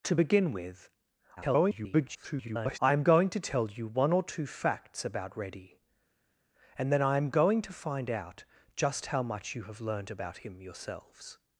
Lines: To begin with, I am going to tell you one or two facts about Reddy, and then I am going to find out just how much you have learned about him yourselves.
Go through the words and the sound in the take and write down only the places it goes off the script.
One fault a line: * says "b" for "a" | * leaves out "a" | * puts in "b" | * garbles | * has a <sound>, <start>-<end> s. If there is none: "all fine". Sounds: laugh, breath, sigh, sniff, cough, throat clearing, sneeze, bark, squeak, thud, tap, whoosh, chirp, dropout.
* garbles